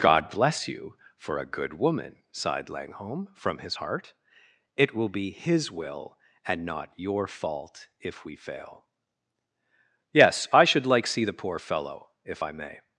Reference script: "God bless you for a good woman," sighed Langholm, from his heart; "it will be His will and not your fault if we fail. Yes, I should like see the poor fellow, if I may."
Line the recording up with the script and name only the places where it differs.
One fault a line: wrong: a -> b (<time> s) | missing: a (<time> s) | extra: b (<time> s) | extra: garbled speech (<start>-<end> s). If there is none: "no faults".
no faults